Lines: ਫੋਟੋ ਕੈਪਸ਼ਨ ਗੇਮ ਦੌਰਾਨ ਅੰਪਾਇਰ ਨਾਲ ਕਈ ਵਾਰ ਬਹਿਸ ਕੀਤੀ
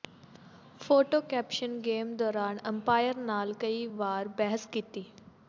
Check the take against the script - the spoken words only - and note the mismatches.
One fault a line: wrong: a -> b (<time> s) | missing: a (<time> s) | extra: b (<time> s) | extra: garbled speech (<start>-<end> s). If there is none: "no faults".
no faults